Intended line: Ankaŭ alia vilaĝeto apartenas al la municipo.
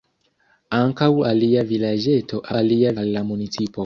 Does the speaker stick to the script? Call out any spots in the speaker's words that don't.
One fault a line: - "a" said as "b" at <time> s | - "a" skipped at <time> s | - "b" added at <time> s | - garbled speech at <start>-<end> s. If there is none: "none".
- "apartenas" said as "alia" at 2.6 s